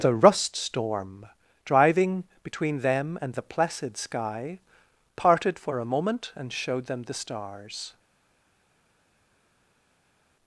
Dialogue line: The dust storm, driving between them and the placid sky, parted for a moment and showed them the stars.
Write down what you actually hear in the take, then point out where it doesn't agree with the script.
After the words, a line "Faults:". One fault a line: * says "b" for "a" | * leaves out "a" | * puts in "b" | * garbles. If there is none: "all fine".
The rust storm, driving between them and the placid sky, parted for a moment and showed them the stars.
Faults:
* says "rust" for "dust"